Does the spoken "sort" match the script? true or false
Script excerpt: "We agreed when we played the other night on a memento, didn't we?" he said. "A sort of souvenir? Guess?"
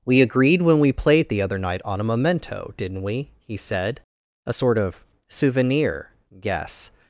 true